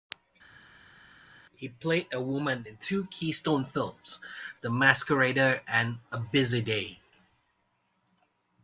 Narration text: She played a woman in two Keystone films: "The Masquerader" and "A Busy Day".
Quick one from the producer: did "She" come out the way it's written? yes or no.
no